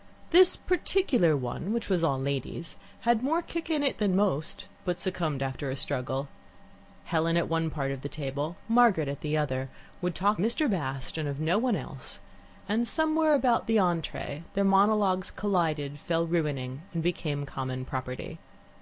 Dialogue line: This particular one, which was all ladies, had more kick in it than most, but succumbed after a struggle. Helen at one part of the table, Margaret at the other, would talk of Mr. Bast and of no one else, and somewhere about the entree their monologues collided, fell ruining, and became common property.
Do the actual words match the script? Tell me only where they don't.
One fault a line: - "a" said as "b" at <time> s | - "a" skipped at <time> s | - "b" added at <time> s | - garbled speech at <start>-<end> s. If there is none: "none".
- "of" skipped at 10.4 s